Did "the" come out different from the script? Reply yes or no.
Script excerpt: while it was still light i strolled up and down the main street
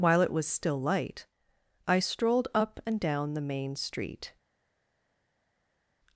no